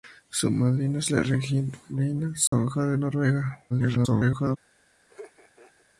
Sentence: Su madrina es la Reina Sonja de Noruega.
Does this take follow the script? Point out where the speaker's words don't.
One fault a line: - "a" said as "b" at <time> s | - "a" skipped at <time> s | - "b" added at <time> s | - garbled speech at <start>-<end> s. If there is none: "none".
- garbled speech at 3.7-4.6 s